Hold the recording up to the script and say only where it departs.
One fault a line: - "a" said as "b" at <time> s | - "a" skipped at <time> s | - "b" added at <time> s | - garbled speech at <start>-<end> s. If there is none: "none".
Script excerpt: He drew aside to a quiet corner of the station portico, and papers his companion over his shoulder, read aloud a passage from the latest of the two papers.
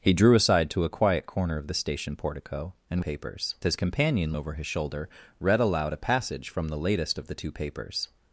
none